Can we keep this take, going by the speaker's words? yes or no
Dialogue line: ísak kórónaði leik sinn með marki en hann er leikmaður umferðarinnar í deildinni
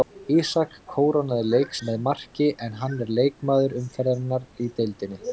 no